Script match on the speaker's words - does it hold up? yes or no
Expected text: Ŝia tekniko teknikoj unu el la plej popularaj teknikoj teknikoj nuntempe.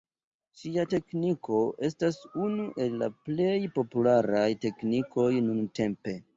no